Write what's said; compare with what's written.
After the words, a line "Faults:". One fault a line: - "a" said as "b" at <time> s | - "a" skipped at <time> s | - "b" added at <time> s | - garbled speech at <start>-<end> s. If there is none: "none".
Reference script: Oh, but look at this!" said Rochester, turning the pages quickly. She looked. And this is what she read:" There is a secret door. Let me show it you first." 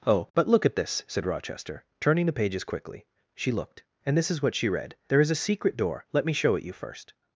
Oh, but look at this!" said Rochester, turning the pages quickly. She looked. And this is what she read:" There is a secret door. Let me show it you first."
Faults:
none